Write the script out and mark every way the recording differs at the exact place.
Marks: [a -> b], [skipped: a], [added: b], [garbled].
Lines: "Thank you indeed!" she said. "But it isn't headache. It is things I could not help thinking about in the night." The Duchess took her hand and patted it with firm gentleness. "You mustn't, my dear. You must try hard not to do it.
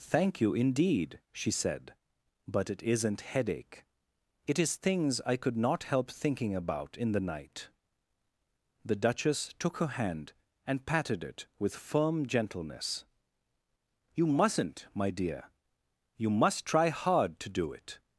"Thank you indeed!" she said. "But it isn't headache. It is things I could not help thinking about in the night." The Duchess took her hand and patted it with firm gentleness. "You mustn't, my dear. You must try hard [skipped: not] to do it.